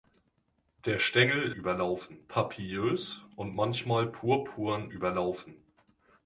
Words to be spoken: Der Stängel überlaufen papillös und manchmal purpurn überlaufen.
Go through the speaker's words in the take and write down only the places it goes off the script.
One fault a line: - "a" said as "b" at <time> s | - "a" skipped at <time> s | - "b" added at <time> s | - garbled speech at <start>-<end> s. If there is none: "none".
none